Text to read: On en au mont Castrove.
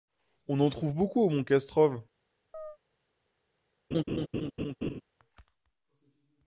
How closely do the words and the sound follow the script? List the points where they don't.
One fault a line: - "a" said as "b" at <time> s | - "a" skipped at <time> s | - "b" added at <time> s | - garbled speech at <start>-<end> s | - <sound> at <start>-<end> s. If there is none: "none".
- "trouve beaucoup" added at 0.7 s
- chirp at 2.5-2.8 s
- laugh at 3.9-5.0 s